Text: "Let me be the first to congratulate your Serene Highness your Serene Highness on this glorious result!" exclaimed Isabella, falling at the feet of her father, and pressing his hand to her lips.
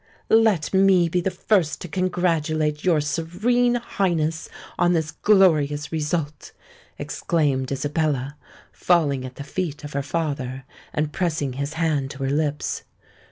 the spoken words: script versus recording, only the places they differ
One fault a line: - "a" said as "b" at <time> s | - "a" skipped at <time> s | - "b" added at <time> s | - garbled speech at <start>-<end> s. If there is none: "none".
- "your Serene Highness" skipped at 4.5 s